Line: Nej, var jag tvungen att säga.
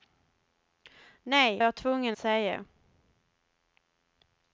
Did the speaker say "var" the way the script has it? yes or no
no